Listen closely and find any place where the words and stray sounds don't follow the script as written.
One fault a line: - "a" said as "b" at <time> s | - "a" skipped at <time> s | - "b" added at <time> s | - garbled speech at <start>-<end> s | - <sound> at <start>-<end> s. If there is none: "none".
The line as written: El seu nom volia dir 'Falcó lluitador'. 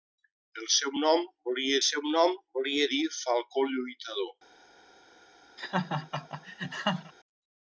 - "seu nom volia" added at 1.9 s
- laugh at 5.6-7.1 s